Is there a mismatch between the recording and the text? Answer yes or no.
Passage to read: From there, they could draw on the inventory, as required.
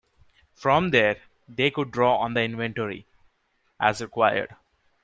no